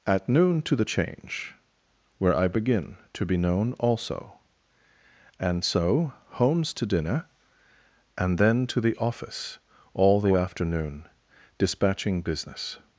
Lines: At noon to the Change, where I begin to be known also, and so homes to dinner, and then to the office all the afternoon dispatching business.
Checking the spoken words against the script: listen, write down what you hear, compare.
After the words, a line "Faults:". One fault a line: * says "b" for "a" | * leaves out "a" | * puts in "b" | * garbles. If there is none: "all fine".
At noon to the Change, where I begin to be known also, and so homes to dinner, and then to the office all the afternoon dispatching business.
Faults:
all fine